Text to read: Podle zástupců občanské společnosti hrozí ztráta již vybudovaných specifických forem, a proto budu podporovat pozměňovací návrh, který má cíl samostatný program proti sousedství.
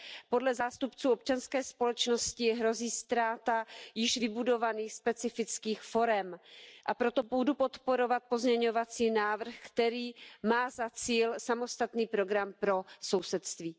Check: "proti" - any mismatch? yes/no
yes